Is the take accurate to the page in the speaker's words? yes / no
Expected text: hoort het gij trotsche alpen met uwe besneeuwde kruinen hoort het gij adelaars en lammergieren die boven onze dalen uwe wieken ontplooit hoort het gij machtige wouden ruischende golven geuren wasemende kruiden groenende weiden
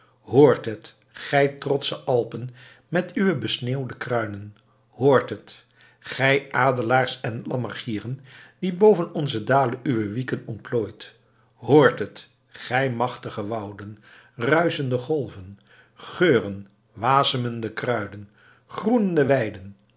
yes